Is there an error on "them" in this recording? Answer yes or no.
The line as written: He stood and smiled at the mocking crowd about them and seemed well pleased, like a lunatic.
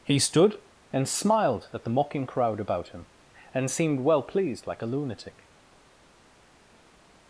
yes